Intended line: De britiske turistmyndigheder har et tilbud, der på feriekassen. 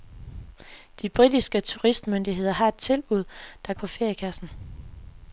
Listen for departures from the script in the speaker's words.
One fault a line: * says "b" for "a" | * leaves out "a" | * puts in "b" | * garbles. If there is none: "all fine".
all fine